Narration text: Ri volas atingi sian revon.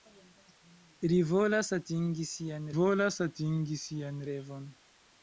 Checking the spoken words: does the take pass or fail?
fail